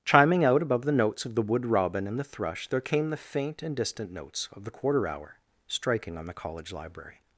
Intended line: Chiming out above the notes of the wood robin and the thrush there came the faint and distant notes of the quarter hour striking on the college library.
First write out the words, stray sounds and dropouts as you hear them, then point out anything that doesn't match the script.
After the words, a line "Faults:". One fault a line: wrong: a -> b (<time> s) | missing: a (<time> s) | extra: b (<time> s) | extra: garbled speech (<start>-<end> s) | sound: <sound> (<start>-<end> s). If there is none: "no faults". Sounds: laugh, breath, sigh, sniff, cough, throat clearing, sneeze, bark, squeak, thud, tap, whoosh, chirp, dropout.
Chiming out above the notes of the wood robin and the thrush there came the faint and distant notes of the quarter hour striking on the college library.
Faults:
no faults